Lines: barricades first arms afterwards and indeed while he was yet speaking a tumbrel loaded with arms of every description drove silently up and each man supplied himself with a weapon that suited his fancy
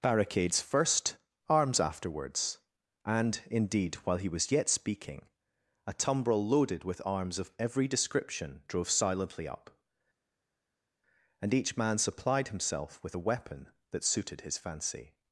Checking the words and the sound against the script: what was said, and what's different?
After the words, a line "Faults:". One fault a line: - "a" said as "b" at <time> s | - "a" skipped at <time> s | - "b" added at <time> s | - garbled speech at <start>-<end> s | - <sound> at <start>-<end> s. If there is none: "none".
barricades first arms afterwards and indeed while he was yet speaking a tumbrel loaded with arms of every description drove silently up and each man supplied himself with a weapon that suited his fancy
Faults:
none